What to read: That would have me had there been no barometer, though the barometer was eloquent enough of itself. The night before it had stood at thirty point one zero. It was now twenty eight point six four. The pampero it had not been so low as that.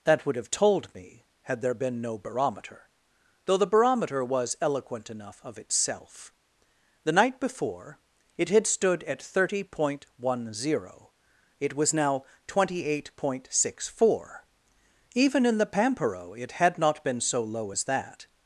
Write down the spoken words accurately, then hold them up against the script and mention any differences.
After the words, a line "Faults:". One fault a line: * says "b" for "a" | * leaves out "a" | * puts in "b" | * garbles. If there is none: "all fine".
That would have told me had there been no barometer, though the barometer was eloquent enough of itself. The night before it had stood at thirty point one zero. It was now twenty eight point six four. Even in the pampero it had not been so low as that.
Faults:
* puts in "told"
* puts in "Even in"